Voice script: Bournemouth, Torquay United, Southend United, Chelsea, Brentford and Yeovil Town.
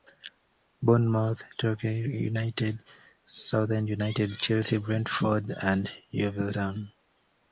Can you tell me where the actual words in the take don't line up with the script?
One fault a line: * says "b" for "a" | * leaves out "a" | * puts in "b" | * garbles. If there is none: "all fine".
all fine